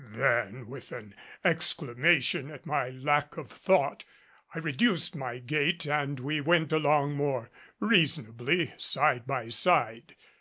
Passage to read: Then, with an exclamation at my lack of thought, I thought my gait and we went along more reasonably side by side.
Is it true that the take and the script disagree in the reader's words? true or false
true